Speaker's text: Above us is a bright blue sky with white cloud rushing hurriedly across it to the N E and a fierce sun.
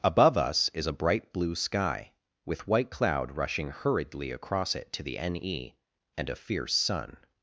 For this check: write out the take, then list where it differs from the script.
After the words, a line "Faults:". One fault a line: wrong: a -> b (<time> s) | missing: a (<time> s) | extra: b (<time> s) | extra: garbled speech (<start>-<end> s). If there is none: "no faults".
Above us is a bright blue sky with white cloud rushing hurriedly across it to the N E and a fierce sun.
Faults:
no faults